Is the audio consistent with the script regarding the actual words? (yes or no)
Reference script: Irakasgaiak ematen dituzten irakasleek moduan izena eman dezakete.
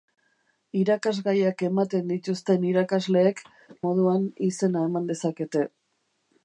yes